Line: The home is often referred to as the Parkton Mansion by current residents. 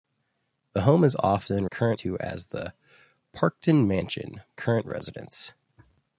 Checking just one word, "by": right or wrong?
wrong